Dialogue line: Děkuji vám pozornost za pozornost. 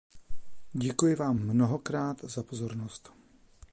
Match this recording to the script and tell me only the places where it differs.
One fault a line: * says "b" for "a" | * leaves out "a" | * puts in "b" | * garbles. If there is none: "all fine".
* says "mnohokrát" for "pozornost"